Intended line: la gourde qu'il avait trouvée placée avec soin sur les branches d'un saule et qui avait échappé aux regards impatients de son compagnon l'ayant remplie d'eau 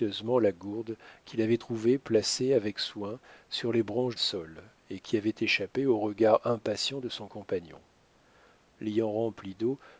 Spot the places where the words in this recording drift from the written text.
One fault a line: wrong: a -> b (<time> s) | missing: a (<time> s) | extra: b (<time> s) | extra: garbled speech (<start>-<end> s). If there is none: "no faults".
missing: d'un (4.2 s)